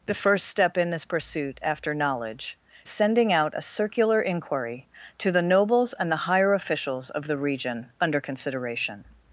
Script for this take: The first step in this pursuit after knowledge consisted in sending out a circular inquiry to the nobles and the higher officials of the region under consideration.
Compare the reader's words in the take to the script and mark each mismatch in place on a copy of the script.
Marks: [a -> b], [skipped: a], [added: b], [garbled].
The first step in this pursuit after knowledge [skipped: consisted in] sending out a circular inquiry to the nobles and the higher officials of the region under consideration.